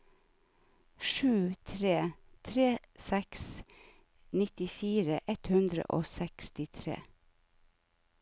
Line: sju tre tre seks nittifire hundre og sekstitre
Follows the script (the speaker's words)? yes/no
no